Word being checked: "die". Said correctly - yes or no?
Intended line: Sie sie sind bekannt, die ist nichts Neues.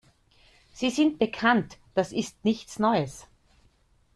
no